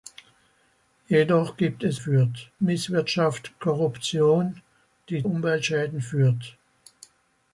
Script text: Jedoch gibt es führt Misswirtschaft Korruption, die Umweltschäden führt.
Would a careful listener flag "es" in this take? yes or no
no